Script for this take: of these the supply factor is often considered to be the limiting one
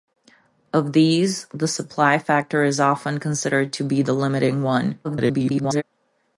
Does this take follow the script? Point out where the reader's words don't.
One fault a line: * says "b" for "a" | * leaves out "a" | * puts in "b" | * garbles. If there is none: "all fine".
* garbles